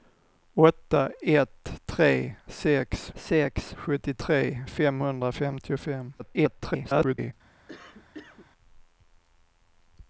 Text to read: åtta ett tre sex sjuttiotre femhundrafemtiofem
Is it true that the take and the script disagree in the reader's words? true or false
true